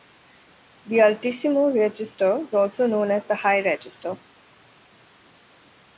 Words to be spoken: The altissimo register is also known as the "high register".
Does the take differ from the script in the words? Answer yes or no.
yes